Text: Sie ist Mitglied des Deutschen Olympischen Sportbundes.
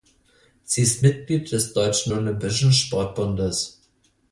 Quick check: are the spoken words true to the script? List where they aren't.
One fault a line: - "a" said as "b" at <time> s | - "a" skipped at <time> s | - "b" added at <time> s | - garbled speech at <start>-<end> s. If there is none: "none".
none